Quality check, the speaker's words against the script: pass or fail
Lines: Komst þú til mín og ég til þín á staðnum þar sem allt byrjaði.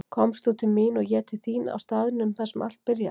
pass